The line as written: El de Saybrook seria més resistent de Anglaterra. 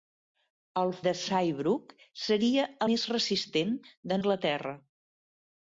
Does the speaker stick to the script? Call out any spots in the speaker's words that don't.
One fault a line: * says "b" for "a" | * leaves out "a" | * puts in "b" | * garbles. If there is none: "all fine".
all fine